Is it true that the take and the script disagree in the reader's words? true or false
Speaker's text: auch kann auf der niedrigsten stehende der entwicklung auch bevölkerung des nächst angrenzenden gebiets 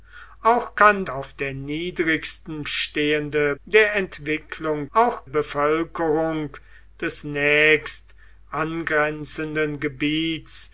false